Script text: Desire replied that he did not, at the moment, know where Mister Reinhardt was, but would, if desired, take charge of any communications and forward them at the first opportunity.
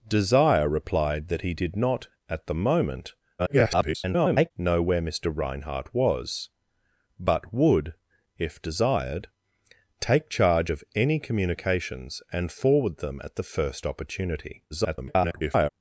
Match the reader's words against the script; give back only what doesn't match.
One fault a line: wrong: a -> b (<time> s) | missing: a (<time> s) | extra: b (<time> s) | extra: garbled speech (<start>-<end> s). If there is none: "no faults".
extra: garbled speech (3.4-4.5 s)
extra: garbled speech (14.7-15.7 s)